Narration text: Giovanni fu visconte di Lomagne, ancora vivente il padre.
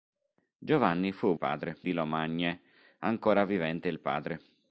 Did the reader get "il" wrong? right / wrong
right